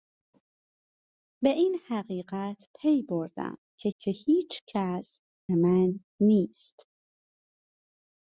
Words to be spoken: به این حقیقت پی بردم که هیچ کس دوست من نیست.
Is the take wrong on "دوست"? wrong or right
wrong